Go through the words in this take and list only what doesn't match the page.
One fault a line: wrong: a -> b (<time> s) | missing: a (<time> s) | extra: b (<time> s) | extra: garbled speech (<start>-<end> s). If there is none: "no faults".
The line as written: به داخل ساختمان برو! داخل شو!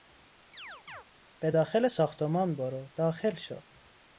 no faults